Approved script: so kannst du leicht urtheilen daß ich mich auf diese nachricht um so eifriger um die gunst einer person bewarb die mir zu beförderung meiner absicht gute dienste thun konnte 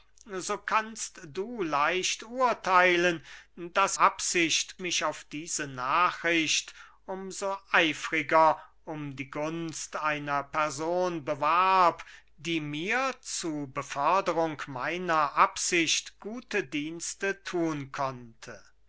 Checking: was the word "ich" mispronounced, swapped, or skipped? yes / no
yes